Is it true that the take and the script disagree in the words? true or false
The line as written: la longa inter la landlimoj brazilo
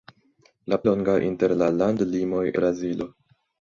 false